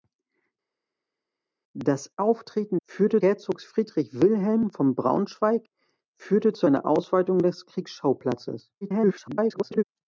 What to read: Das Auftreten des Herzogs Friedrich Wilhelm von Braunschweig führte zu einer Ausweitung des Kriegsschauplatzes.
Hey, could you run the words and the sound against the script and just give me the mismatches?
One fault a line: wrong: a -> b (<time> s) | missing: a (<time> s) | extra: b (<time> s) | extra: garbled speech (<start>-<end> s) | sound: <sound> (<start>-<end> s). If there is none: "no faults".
wrong: des -> führte (2.8 s)
extra: garbled speech (8.8-9.8 s)